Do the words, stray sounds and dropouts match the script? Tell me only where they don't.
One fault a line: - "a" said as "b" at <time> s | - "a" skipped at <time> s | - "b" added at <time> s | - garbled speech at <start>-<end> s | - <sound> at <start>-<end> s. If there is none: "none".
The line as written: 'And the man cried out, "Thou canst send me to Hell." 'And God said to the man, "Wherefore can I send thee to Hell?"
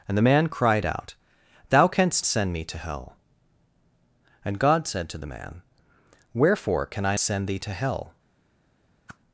- whoosh at 9.1-9.2 s